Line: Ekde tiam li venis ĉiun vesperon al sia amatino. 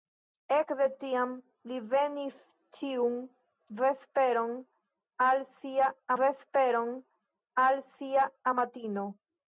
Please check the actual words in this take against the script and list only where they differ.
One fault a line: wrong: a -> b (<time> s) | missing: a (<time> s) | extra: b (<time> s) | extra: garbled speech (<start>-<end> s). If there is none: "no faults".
extra: vesperon al sia (6.2 s)